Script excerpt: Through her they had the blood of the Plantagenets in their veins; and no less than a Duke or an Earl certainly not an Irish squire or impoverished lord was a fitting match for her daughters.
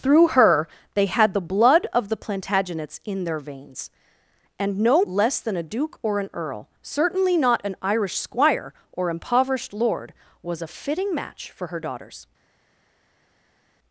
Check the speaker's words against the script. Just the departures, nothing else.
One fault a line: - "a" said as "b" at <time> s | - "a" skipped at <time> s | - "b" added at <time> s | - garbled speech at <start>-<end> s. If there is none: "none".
none